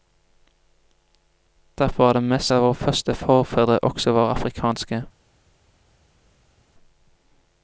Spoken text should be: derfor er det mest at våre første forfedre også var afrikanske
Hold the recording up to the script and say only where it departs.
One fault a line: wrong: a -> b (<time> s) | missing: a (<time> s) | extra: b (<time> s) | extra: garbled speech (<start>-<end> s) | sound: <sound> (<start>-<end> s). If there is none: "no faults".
no faults